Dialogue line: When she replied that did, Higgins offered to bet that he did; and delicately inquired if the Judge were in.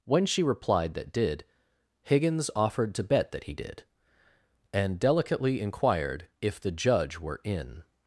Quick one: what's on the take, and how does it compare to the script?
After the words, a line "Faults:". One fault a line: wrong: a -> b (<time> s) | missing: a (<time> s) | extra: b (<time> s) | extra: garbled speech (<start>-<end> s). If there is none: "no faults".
When she replied that did, Higgins offered to bet that he did; and delicately inquired if the Judge were in.
Faults:
no faults